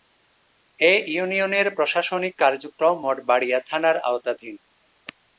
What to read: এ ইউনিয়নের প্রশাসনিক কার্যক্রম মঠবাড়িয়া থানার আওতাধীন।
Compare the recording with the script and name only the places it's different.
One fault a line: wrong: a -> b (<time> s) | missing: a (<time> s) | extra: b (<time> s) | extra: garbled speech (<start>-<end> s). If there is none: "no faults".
no faults